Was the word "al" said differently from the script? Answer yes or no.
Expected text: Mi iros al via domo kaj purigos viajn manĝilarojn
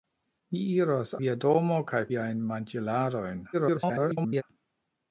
yes